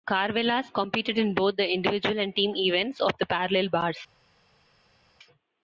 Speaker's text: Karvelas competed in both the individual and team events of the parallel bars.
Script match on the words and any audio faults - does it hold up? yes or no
yes